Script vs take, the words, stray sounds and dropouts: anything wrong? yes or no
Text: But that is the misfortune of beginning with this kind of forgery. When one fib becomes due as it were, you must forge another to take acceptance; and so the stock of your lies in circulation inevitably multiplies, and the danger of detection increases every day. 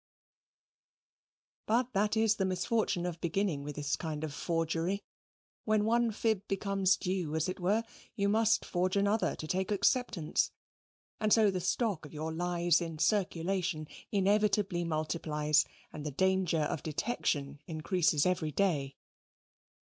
no